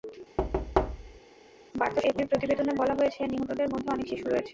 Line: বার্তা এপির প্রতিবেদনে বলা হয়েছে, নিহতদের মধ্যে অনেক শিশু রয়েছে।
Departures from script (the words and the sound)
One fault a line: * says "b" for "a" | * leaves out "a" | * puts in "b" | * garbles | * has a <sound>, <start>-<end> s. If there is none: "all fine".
* has a thud, 0.4-1.2 s